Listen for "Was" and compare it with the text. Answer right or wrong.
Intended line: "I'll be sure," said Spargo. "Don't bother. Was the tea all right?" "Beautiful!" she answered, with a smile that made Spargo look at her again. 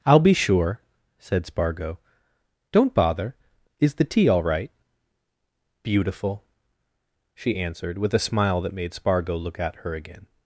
wrong